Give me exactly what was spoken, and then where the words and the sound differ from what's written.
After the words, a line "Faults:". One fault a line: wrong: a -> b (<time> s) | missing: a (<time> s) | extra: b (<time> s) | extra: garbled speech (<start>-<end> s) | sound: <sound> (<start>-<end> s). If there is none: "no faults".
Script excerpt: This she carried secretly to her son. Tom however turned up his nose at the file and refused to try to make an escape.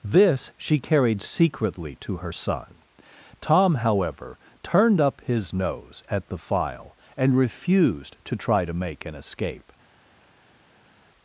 This she carried secretly to her son. Tom however turned up his nose at the file and refused to try to make an escape.
Faults:
no faults